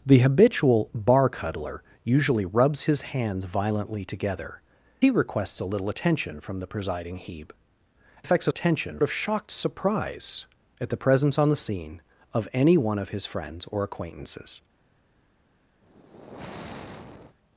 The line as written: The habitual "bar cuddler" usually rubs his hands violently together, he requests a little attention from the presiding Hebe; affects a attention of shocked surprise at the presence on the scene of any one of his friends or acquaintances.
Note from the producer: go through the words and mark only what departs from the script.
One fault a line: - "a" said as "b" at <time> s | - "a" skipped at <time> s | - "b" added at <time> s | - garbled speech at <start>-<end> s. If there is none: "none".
none